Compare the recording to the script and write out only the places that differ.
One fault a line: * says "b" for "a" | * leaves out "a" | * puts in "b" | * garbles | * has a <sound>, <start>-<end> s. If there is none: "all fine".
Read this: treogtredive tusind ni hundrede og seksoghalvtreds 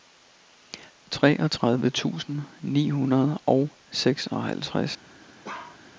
* has a bark, 5.4-5.8 s